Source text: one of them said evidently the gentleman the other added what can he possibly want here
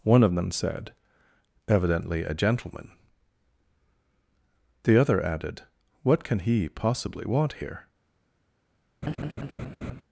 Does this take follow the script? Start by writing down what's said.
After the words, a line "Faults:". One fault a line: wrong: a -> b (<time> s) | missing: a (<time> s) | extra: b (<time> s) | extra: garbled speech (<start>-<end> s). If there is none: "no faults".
one of them said evidently a gentleman the other added what can he possibly want here
Faults:
wrong: the -> a (2.2 s)